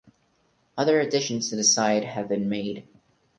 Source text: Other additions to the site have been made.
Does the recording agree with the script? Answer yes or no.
yes